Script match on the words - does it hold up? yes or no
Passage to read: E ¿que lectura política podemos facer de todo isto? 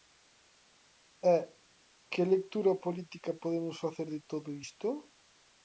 yes